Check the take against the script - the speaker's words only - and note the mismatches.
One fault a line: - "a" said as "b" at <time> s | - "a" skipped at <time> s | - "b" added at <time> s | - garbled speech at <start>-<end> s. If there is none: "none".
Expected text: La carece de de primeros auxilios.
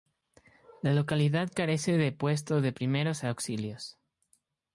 - "localidad" added at 0.9 s
- "puesto" added at 2.1 s